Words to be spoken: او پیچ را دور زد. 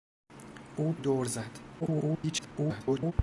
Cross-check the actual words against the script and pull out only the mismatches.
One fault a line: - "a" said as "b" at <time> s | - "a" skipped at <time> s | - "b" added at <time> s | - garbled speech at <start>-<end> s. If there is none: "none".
- "پیچ را" skipped at 0.9 s
- garbled speech at 1.8-3.1 s